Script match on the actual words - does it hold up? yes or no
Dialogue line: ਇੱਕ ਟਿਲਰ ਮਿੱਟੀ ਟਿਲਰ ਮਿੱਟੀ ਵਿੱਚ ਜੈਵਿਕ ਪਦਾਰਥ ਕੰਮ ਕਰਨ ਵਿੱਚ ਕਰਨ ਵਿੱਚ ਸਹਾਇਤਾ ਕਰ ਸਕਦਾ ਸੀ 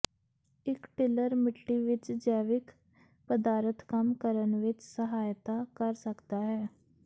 no